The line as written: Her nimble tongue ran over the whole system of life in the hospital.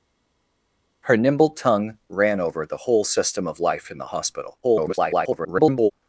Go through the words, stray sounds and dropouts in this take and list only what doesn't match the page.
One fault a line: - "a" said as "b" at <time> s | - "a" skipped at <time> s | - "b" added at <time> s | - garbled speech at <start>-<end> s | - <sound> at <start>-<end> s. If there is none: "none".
- garbled speech at 4.6-5.9 s